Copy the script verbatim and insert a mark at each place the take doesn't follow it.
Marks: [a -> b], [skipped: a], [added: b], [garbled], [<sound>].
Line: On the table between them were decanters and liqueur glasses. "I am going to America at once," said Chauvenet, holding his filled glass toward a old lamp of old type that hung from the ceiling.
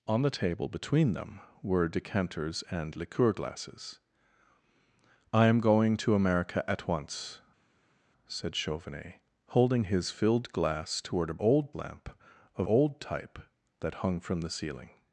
On the table between them were decanters and liqueur glasses. "I am going to America at once," said Chauvenet, holding his filled glass toward a old lamp of old type that hung from the ceiling.